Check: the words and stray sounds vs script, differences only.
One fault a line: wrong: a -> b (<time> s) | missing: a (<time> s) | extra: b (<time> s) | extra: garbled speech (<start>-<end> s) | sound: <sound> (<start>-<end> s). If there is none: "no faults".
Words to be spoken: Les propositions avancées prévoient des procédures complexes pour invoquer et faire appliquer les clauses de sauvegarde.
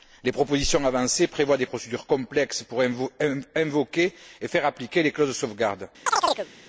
sound: chirp (6.1-6.5 s)